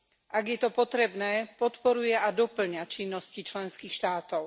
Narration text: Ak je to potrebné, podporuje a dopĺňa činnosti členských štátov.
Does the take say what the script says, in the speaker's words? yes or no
yes